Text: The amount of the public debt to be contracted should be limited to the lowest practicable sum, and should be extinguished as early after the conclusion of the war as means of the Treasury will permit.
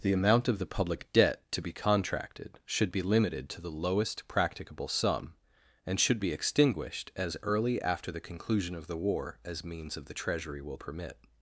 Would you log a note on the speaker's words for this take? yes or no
no